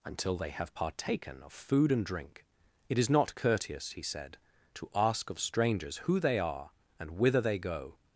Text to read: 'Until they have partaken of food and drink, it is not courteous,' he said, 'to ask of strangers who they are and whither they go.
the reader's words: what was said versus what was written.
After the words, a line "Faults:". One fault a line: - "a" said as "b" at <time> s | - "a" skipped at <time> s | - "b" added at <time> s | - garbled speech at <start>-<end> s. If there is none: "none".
'Until they have partaken of food and drink, it is not courteous,' he said, 'to ask of strangers who they are and whither they go.
Faults:
none